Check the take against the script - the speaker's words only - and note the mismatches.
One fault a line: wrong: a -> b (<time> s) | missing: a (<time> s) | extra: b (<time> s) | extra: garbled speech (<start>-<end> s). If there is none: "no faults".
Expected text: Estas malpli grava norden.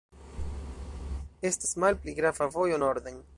extra: vojo (2.5 s)